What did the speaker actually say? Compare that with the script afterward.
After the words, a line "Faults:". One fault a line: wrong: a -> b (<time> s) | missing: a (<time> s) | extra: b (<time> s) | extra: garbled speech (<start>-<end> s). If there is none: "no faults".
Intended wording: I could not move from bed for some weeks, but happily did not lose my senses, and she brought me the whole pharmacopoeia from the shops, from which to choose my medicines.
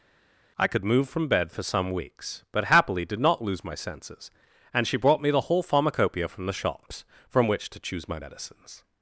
I could move from bed for some weeks, but happily did not lose my senses, and she brought me the whole pharmacopoeia from the shops, from which to choose my medicines.
Faults:
missing: not (0.8 s)